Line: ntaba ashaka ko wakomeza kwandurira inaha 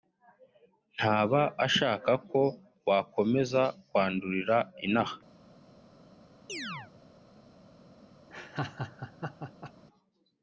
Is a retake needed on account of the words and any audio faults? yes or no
yes